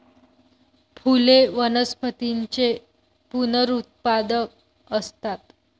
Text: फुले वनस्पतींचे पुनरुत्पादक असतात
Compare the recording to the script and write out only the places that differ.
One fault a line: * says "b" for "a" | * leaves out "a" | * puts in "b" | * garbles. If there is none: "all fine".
all fine